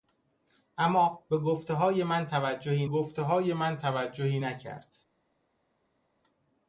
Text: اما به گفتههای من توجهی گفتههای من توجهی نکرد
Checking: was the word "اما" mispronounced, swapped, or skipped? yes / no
no